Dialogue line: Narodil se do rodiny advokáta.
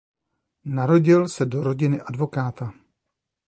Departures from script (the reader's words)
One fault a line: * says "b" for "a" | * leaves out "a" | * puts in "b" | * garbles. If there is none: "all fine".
all fine